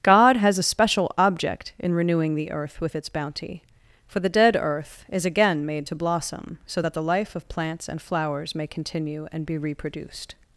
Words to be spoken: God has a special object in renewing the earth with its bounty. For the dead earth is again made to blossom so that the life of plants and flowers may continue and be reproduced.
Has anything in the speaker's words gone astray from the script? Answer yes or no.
no